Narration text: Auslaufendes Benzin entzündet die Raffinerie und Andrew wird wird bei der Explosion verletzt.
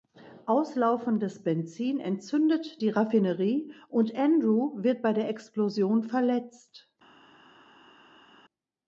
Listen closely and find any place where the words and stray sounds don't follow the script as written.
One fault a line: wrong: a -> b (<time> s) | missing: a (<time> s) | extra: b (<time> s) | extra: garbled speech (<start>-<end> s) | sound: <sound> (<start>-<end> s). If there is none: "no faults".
missing: wird (5.0 s)